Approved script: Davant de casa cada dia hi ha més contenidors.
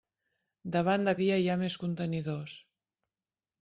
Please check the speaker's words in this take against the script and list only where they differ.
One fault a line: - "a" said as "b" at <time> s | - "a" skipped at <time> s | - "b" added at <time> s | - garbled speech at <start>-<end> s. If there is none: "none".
- "casa cada" skipped at 1.1 s